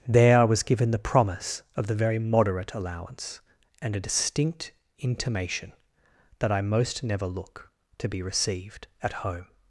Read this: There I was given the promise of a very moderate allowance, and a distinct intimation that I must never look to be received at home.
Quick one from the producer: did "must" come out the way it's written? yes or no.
no